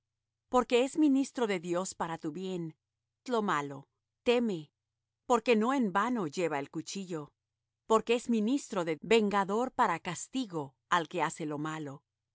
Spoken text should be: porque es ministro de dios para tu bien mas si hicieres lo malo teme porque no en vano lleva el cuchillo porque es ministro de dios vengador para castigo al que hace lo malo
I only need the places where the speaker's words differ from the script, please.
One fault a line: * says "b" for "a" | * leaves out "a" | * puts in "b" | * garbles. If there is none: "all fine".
* leaves out "mas si hicieres"
* leaves out "dios"